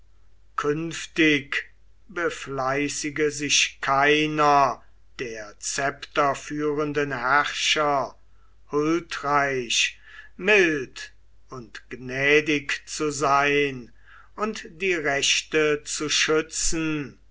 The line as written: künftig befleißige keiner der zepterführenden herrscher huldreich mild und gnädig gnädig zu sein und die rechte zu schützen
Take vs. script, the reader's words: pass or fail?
fail